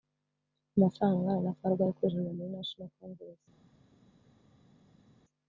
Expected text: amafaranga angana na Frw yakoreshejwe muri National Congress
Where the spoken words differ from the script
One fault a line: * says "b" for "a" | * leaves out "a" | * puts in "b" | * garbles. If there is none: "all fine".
all fine